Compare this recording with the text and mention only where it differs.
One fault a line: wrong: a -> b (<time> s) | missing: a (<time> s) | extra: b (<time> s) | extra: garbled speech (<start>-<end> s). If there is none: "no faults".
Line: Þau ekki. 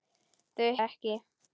no faults